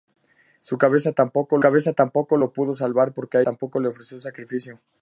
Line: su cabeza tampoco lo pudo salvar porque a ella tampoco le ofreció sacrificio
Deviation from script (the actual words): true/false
true